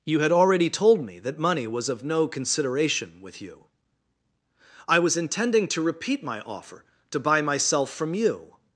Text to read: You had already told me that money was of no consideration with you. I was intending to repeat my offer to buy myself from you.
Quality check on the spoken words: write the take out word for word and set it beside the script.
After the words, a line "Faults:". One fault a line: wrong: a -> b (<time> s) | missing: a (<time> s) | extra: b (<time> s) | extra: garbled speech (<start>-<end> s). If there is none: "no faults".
You had already told me that money was of no consideration with you. I was intending to repeat my offer to buy myself from you.
Faults:
no faults